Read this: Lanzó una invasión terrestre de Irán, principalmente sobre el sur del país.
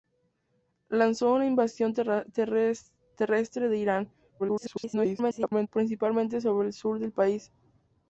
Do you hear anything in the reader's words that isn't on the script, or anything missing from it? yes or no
yes